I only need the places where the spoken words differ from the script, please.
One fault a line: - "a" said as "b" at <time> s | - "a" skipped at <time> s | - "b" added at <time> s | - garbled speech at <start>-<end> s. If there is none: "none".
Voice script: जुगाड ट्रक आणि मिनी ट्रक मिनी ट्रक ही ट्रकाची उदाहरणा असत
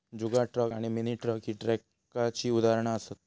- "मिनी ट्रक" skipped at 1.4 s